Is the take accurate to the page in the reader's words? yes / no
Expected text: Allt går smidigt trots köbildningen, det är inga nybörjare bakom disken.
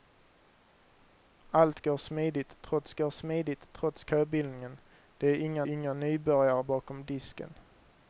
no